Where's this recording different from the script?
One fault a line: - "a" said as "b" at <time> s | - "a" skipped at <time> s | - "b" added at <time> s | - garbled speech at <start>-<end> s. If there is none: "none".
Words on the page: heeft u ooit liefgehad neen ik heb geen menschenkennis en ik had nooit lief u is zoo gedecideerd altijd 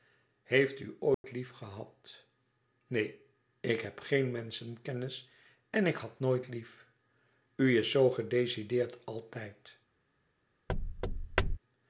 none